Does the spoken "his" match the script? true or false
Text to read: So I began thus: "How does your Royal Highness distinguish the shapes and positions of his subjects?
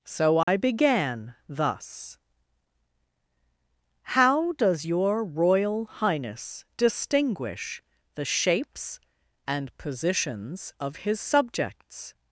true